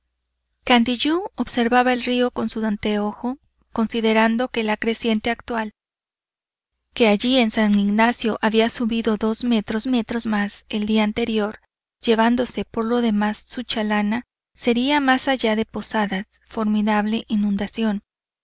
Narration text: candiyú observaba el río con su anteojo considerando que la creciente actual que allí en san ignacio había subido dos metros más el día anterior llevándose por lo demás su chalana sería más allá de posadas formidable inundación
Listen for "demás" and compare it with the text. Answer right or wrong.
right